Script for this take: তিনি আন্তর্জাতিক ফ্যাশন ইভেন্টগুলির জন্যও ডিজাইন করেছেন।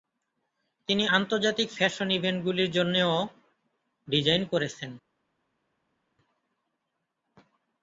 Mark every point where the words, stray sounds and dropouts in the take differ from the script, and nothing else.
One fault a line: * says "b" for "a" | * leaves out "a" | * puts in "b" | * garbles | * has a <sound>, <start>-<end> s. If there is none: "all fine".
all fine